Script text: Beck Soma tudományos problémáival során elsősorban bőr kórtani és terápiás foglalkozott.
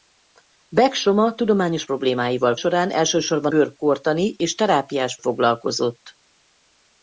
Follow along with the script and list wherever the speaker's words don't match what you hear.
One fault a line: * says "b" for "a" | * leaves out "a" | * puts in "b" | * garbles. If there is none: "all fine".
all fine